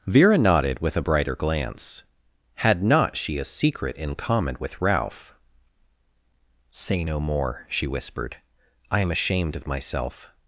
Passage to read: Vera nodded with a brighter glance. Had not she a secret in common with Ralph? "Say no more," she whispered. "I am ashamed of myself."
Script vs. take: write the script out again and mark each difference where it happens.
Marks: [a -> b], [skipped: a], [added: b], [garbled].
Vera nodded with a brighter glance. Had not she a secret in common with Ralph? "Say no more," she whispered. "I am ashamed of myself."